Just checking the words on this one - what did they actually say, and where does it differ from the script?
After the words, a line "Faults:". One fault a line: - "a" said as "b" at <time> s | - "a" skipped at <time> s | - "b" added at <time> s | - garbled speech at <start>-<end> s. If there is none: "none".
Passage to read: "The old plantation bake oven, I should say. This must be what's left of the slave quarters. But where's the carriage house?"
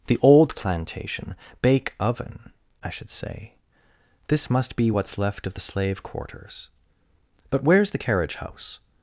"The old plantation bake oven, I should say. This must be what's left of the slave quarters. But where's the carriage house?"
Faults:
none